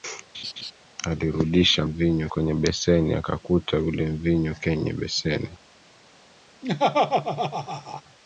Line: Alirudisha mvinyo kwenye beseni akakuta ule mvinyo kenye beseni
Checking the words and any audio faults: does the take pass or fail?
fail